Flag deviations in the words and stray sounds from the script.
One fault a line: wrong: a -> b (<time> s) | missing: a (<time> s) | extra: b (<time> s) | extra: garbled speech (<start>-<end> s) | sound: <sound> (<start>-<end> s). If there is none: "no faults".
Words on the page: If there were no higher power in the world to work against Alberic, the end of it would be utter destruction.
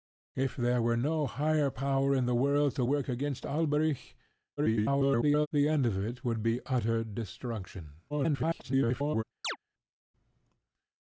extra: garbled speech (4.6-5.5 s)
extra: garbled speech (8.1-9.2 s)
sound: chirp (9.4-9.6 s)